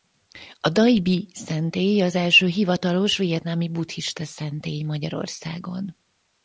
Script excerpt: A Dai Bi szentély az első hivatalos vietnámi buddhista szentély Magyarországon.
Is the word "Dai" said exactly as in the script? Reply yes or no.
yes